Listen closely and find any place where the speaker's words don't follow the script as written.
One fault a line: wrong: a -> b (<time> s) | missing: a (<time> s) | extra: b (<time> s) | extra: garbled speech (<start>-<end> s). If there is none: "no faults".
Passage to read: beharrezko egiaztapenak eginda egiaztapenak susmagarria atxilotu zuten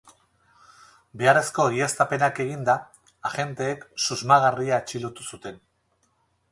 wrong: egiaztapenak -> agenteek (3.3 s)